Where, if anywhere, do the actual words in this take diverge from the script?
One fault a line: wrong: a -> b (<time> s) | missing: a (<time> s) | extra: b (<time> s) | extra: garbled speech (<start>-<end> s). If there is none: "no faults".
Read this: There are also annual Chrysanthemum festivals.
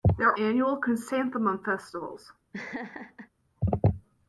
missing: also (0.4 s)